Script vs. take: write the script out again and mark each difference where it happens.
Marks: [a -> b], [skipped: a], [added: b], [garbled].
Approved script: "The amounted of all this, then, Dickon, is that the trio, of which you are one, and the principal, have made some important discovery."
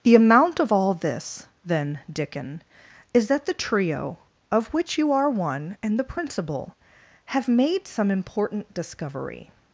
"The [amounted -> amount] of all this, then, Dickon, is that the trio, of which you are one, and the principal, have made some important discovery."